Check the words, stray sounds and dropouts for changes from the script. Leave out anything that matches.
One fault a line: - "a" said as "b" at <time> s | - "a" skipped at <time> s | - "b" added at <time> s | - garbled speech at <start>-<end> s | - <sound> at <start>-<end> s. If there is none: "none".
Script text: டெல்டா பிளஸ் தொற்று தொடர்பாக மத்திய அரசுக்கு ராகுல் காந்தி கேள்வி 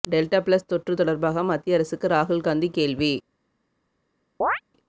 - chirp at 4.4-4.6 s